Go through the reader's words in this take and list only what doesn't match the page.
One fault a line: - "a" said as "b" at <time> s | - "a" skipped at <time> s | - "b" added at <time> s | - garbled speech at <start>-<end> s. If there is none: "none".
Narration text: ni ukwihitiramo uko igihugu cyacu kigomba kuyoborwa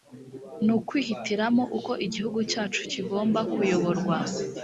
none